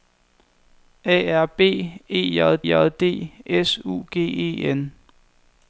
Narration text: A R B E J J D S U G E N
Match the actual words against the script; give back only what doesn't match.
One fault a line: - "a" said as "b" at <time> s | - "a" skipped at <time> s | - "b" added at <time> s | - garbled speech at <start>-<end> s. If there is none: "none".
none